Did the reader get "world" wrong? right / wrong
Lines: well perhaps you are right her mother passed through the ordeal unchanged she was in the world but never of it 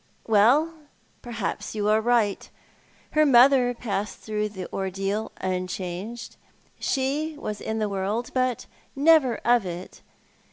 right